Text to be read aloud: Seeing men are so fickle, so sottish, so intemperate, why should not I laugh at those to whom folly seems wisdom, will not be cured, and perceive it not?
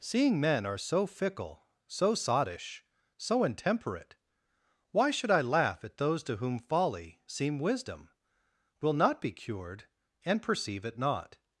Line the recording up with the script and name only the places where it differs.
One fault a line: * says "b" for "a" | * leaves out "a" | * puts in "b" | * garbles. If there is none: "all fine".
* leaves out "not"
* says "seem" for "seems"